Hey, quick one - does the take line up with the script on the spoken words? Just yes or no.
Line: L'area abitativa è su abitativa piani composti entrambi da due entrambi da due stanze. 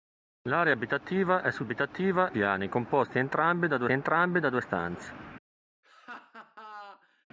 yes